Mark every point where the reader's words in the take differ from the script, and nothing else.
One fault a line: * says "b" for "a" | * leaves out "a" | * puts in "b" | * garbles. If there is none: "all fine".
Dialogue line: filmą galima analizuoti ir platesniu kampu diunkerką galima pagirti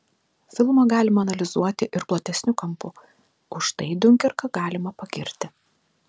* puts in "už tai"